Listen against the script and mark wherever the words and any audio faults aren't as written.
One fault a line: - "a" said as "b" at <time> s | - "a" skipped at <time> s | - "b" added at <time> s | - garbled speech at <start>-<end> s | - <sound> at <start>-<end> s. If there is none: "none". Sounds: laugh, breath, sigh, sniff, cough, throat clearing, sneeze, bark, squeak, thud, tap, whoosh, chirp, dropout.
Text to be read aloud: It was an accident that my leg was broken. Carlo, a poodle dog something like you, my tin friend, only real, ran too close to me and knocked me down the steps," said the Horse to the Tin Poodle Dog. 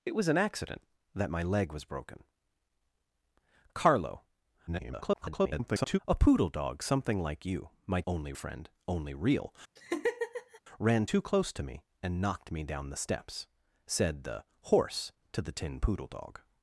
- garbled speech at 4.7-6.0 s
- "tin" said as "only" at 8.1 s
- laugh at 9.8-10.6 s